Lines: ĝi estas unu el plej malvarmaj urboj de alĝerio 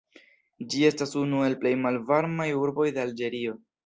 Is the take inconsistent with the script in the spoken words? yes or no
no